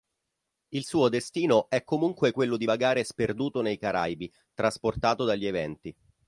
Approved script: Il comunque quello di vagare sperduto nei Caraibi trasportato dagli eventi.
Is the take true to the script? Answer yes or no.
no